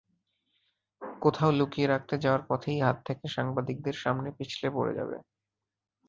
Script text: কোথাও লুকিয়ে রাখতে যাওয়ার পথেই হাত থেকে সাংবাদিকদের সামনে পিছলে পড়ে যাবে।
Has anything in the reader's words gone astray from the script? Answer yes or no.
no